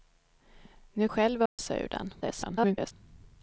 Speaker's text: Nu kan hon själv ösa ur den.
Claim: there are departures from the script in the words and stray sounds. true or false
true